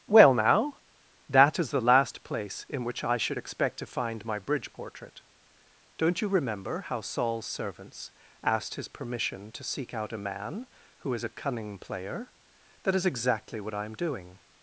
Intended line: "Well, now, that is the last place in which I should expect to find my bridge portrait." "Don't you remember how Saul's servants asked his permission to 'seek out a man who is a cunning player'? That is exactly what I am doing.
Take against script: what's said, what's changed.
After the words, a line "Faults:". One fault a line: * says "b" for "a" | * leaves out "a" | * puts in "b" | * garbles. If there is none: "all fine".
"Well, now, that is the last place in which I should expect to find my bridge portrait." "Don't you remember how Saul's servants asked his permission to 'seek out a man who is a cunning player'? That is exactly what I am doing.
Faults:
all fine